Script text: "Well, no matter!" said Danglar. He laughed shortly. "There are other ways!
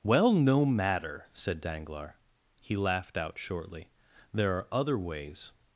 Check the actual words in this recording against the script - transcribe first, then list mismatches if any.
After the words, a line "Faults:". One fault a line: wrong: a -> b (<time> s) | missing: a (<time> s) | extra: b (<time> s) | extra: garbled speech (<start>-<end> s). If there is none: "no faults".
"Well, no matter!" said Danglar. He laughed out shortly. "There are other ways!
Faults:
extra: out (3.2 s)